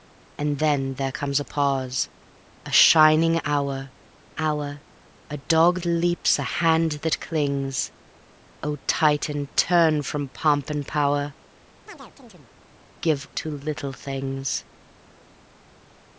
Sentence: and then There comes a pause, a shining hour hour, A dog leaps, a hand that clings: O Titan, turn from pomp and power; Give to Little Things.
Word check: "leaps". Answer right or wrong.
right